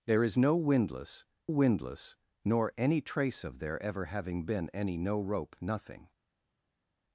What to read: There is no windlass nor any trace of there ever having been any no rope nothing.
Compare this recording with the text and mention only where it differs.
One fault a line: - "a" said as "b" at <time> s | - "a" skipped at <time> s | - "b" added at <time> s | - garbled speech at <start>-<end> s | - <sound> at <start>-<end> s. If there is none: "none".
- "windlass" added at 1.5 s